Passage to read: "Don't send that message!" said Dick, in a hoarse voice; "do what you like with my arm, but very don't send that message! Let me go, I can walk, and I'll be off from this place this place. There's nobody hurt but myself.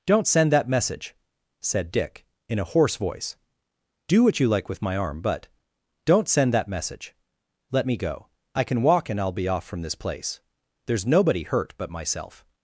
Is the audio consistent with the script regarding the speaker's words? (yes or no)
no